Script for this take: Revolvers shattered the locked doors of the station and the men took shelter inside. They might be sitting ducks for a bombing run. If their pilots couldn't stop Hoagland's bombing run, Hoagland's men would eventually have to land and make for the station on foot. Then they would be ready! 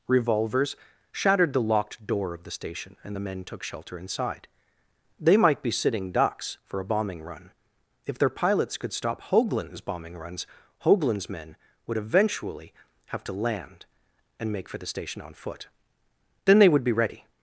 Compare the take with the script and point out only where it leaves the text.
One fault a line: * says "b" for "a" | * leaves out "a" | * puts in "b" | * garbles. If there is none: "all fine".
* says "door" for "doors"
* says "could" for "couldn't"
* says "runs" for "run"